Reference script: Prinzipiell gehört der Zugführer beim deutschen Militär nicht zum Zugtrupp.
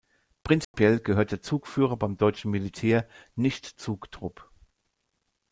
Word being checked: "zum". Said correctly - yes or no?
no